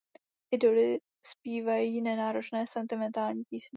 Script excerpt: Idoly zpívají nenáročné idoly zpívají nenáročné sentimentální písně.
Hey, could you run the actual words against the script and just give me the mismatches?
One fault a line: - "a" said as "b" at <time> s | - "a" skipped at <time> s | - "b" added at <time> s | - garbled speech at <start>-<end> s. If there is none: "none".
- "idoly zpívají nenáročné" skipped at 2.7 s